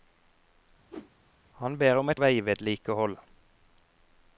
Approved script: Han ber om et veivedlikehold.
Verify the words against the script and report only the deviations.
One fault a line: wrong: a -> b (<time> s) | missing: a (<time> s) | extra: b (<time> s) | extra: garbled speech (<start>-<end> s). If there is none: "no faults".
no faults